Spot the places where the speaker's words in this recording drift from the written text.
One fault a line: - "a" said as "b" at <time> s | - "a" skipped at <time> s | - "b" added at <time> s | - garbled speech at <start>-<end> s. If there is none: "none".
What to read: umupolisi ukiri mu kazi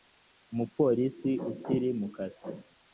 none